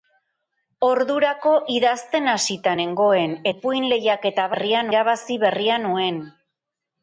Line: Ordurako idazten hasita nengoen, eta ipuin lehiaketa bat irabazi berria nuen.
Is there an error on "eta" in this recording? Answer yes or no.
yes